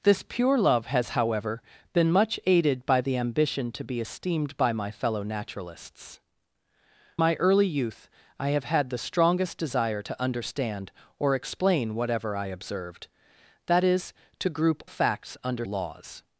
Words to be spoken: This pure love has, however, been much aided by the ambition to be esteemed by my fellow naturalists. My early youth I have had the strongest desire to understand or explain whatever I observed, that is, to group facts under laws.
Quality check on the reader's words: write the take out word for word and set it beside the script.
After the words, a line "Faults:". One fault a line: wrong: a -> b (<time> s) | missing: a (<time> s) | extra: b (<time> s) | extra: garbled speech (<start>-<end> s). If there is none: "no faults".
This pure love has, however, been much aided by the ambition to be esteemed by my fellow naturalists. My early youth I have had the strongest desire to understand or explain whatever I observed, that is, to group facts under laws.
Faults:
no faults